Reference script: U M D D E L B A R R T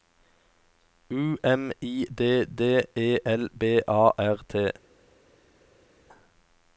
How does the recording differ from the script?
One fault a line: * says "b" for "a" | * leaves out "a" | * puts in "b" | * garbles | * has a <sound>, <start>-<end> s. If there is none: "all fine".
* puts in "I"
* leaves out "R"